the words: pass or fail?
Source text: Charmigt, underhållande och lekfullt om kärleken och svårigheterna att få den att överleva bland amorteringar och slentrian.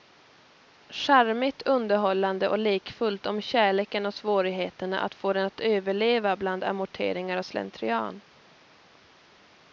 pass